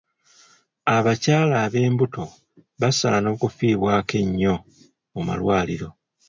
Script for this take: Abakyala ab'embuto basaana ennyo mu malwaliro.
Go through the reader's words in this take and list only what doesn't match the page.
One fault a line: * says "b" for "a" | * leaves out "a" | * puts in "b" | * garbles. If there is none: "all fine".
* puts in "okufiibwako"